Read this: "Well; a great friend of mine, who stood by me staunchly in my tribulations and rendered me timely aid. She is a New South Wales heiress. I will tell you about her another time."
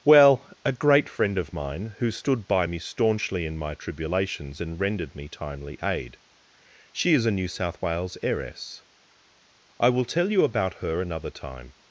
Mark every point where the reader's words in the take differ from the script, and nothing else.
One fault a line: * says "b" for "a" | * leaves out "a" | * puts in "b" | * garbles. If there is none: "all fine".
all fine